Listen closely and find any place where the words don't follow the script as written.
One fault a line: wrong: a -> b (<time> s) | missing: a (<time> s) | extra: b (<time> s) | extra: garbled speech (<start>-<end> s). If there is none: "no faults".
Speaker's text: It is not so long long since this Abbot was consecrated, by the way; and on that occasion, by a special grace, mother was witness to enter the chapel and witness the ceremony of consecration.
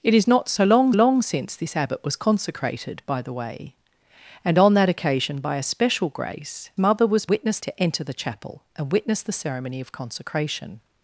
no faults